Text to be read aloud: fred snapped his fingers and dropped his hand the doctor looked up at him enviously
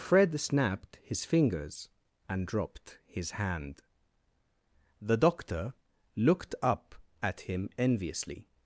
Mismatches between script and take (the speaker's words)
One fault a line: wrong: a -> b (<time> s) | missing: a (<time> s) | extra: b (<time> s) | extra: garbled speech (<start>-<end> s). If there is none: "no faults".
no faults